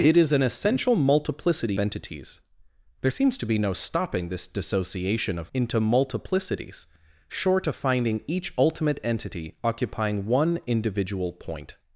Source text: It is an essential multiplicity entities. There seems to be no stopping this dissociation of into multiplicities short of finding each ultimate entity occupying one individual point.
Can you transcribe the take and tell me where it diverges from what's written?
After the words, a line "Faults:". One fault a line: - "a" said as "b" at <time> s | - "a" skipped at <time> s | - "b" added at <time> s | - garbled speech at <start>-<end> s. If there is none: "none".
It is an essential multiplicity entities. There seems to be no stopping this dissociation of into multiplicities short of finding each ultimate entity occupying one individual point.
Faults:
none